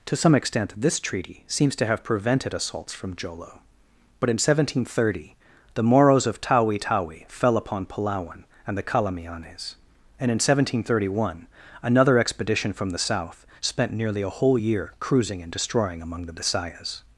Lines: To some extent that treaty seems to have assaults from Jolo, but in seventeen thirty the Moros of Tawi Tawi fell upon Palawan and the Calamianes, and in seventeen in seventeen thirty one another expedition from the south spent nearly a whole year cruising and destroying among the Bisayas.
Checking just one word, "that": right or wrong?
wrong